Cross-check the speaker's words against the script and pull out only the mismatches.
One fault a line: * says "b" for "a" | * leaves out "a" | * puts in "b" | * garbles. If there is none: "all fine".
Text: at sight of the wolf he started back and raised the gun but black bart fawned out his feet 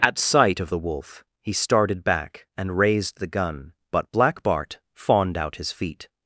all fine